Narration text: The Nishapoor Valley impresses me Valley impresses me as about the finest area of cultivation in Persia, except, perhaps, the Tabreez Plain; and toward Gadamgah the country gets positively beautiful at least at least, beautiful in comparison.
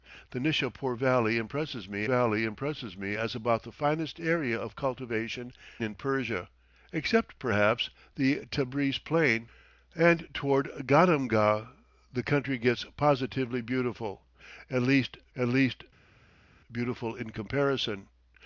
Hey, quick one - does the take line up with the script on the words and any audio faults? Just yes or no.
yes